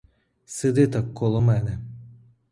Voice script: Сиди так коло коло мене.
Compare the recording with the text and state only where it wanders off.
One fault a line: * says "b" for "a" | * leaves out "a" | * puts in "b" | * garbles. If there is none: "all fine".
* leaves out "коло"